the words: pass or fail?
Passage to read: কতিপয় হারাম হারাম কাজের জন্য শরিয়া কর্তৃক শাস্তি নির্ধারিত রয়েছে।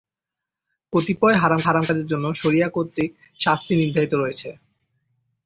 pass